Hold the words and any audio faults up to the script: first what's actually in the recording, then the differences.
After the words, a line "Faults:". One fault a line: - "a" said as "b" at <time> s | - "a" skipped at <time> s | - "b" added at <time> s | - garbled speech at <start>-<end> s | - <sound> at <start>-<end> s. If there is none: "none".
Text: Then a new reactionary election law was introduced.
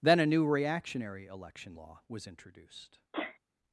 Then a new reactionary election law was introduced.
Faults:
- sneeze at 3.1-3.4 s